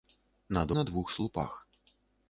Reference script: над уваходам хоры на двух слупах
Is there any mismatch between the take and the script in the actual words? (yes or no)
yes